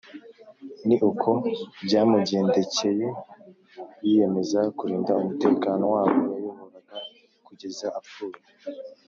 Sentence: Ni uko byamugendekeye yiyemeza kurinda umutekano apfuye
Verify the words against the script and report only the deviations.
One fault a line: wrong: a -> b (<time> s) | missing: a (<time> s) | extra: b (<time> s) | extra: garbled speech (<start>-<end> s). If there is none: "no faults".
extra: w'abo yayoboraga kugeza (5.9 s)